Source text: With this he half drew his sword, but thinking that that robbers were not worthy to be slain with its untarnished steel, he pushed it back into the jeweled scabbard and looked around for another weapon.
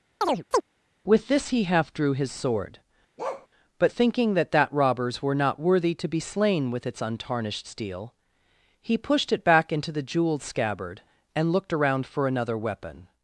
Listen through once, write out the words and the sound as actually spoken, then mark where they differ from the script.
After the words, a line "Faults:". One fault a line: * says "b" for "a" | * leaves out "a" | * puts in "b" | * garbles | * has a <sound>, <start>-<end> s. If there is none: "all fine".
With this he half drew his sword, but thinking that that robbers were not worthy to be slain with its untarnished steel, he pushed it back into the jeweled scabbard and looked around for another weapon.
Faults:
* has a chirp, 0.2-0.6 s
* has a bark, 3.2-3.5 s